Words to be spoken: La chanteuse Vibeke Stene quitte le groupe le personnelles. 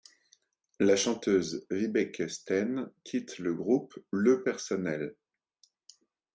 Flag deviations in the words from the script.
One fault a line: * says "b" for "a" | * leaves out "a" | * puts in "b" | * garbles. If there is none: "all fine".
all fine